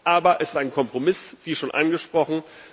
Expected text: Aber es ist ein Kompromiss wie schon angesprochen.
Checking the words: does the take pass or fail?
pass